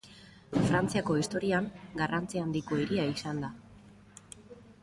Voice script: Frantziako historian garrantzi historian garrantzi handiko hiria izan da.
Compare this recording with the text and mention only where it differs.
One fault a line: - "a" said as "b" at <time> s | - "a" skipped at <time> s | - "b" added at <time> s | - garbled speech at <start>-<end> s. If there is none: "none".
- "historian garrantzi" skipped at 2.4 s